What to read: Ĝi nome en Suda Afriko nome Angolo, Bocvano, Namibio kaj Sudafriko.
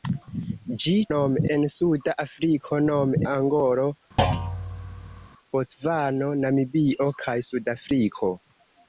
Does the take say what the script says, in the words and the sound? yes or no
no